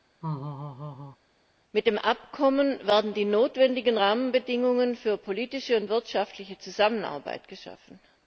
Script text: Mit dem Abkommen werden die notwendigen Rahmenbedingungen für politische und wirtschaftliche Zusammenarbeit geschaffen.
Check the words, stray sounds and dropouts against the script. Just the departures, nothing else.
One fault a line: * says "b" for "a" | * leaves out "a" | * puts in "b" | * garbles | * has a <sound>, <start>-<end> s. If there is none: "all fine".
* has a laugh, 0.2-1.2 s